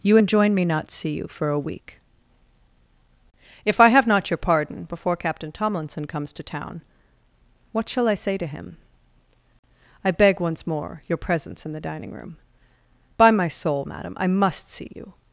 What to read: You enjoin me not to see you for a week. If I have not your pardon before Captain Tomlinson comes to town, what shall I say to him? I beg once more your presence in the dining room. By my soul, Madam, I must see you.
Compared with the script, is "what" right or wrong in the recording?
right